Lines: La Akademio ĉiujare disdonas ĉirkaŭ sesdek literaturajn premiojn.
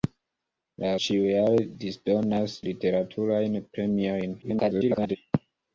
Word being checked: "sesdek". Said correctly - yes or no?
no